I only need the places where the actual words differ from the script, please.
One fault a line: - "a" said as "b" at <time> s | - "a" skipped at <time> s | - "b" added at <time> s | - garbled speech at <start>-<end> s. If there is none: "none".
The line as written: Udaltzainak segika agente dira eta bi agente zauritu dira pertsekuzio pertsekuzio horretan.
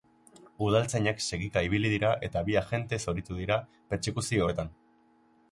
- "agente" said as "ibili" at 1.7 s
- "pertsekuzio" skipped at 4.5 s